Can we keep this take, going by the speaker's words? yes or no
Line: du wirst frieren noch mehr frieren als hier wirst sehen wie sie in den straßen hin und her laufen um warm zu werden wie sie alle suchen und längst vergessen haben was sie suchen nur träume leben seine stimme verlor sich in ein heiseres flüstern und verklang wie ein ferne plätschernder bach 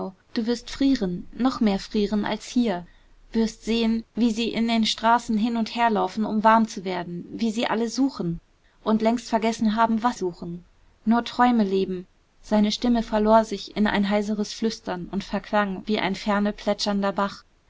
no